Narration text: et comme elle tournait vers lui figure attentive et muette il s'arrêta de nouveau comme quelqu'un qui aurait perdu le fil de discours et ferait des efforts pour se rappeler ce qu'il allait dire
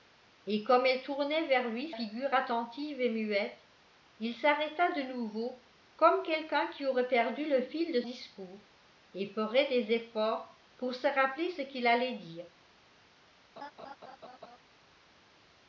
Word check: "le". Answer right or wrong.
right